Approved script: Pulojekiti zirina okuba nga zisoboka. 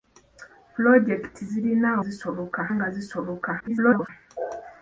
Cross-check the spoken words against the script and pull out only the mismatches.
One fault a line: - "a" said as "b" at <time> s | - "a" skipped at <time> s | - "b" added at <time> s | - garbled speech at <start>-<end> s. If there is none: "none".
- "okuba" said as "zisoboka" at 2.0 s
- garbled speech at 3.6-4.1 s